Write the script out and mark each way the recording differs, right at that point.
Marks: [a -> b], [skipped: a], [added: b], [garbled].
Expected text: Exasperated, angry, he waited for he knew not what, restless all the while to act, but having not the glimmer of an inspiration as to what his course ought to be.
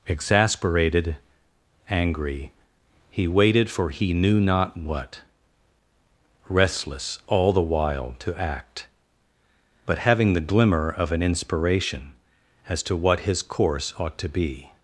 Exasperated, angry, he waited for he knew not what, restless all the while to act, but having [skipped: not] the glimmer of an inspiration as to what his course ought to be.